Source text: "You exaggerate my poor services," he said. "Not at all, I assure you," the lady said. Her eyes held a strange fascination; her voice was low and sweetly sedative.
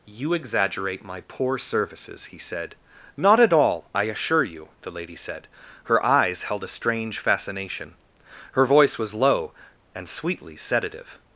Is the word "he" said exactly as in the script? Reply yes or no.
yes